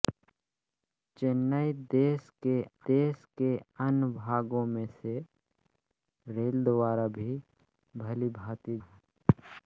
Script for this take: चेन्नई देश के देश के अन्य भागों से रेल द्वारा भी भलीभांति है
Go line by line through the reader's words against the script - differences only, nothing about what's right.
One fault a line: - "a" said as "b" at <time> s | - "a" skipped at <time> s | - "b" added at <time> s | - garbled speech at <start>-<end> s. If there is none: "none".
none